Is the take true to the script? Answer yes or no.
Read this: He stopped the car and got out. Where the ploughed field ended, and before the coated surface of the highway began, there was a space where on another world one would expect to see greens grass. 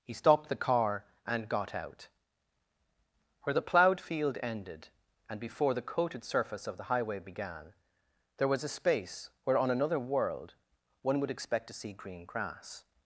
no